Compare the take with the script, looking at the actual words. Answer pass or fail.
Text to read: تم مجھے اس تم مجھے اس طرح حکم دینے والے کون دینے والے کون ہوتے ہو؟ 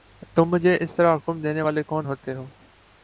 fail